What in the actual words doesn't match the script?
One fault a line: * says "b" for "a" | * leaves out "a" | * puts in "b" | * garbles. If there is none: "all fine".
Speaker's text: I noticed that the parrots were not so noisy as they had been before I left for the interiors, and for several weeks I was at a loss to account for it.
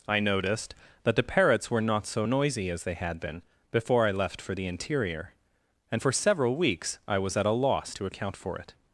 * says "interior" for "interiors"